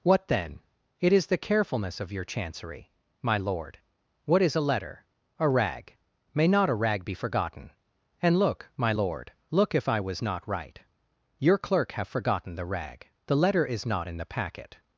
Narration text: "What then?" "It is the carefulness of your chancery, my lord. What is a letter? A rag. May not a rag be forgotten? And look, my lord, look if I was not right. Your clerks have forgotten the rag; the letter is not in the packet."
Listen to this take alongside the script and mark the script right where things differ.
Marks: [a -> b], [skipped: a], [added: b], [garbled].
"What then?" "It is the carefulness of your chancery, my lord. What is a letter? A rag. May not a rag be forgotten? And look, my lord, look if I was not right. Your [clerks -> clerk] have forgotten the rag; the letter is not in the packet."